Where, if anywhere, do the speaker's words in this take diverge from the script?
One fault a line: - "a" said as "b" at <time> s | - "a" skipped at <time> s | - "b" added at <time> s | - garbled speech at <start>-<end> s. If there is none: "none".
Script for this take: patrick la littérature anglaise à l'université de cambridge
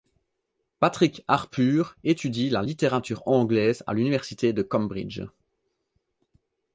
- "harpur étudie" added at 1.3 s